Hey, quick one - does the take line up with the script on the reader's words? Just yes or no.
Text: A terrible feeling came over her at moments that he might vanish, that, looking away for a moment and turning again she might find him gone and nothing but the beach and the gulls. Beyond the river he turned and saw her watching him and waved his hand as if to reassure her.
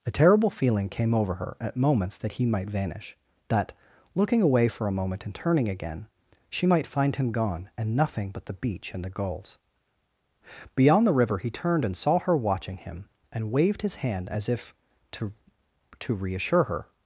no